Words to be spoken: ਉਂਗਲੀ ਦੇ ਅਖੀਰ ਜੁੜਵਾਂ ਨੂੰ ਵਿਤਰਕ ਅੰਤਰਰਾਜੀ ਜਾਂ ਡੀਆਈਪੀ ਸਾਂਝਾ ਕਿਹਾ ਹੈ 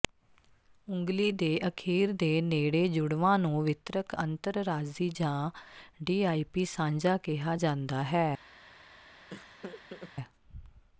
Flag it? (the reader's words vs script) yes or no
yes